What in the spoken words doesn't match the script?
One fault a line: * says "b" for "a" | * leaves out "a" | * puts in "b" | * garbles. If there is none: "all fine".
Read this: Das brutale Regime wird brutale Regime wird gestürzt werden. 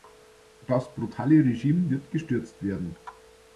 * leaves out "brutale Regime wird"